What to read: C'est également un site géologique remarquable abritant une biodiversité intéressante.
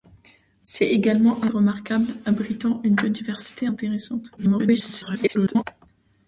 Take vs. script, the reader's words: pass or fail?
fail